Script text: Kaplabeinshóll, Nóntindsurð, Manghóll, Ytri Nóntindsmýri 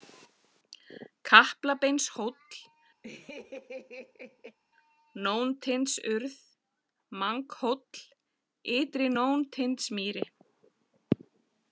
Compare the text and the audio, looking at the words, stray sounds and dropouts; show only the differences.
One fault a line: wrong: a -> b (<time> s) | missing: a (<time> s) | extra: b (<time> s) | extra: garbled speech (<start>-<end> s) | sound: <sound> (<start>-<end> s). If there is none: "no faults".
sound: laugh (3.0-4.6 s)